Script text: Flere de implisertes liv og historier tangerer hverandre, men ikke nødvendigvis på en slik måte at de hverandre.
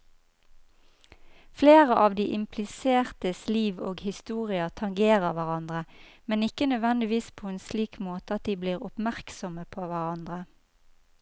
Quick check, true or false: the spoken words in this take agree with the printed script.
false